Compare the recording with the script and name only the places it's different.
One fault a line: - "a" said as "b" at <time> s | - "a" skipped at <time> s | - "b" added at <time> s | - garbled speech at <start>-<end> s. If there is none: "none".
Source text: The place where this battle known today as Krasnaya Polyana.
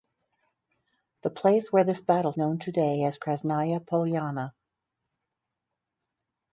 none